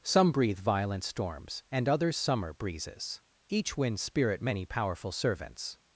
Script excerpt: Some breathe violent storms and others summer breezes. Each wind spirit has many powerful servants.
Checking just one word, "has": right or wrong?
wrong